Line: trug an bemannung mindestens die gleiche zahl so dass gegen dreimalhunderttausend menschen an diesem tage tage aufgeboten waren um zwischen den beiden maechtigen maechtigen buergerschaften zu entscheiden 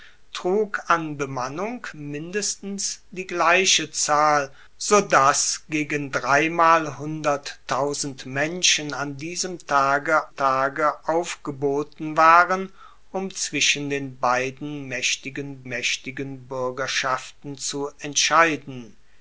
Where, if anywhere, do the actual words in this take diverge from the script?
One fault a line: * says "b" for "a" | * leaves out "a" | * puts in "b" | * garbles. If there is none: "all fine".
all fine